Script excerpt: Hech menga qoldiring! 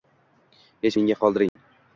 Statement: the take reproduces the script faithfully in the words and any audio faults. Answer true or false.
false